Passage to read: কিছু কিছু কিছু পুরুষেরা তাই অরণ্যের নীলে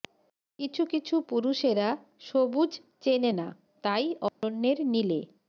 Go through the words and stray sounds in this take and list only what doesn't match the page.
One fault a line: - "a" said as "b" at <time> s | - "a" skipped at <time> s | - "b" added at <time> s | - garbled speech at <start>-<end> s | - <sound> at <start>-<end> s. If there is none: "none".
- "কিছু পুরুষেরা" said as "পুরুষেরা সবুজ চেনে না" at 1.3 s
- dropout at 4.3-4.4 s